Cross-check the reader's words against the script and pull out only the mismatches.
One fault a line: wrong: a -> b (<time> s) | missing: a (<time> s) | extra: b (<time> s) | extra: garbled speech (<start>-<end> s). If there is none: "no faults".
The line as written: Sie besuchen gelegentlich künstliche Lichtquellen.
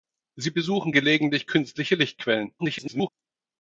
extra: garbled speech (2.6-3.1 s)